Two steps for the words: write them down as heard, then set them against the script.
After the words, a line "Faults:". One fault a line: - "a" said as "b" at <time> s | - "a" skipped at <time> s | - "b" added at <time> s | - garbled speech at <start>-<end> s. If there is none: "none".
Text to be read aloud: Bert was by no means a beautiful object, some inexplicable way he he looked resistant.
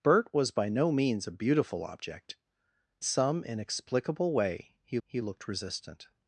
Bert was by no means a beautiful object, some inexplicable way he he looked resistant.
Faults:
none